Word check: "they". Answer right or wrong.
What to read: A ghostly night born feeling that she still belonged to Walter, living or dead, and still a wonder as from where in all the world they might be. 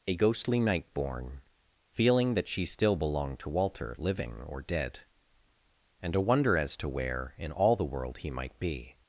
wrong